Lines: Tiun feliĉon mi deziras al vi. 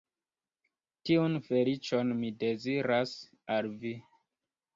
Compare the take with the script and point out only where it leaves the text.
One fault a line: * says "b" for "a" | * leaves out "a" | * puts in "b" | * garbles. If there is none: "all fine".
all fine